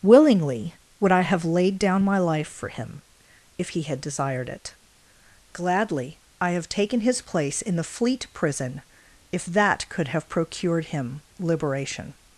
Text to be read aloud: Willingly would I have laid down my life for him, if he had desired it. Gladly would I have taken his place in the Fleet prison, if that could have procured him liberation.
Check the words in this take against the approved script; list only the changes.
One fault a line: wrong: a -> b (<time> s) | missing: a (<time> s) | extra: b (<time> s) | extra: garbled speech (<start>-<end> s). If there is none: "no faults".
missing: would (6.2 s)